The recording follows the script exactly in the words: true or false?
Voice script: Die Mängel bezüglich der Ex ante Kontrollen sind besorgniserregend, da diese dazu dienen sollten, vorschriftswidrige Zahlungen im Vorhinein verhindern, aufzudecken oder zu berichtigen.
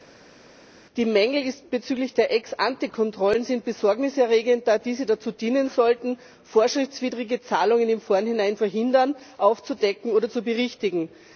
true